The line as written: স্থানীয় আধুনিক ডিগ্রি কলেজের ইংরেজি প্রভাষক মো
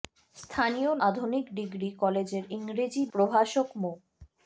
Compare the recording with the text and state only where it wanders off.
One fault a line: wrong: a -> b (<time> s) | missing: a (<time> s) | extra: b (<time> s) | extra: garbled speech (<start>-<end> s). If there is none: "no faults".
no faults